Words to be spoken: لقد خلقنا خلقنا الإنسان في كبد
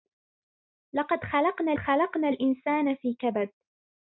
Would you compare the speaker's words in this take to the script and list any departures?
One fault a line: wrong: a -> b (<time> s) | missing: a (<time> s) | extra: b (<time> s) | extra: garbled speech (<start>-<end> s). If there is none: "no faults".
no faults